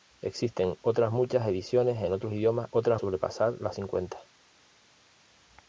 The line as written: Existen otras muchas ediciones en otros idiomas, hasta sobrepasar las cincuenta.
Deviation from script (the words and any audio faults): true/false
true